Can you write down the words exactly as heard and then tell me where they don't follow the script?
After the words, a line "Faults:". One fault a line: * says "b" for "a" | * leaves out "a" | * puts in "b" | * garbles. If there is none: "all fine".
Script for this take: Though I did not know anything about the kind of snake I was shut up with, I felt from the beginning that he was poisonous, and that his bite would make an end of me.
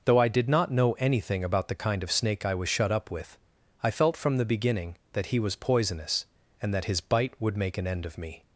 Though I did not know anything about the kind of snake I was shut up with, I felt from the beginning that he was poisonous, and that his bite would make an end of me.
Faults:
all fine